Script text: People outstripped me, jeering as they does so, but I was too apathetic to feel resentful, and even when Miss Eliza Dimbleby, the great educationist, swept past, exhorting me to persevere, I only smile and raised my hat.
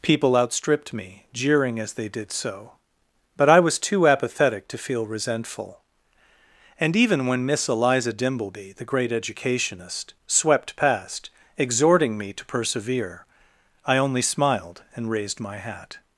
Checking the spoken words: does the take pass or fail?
fail